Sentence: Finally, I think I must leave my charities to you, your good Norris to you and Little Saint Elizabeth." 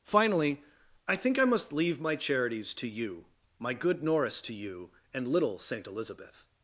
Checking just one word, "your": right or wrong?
wrong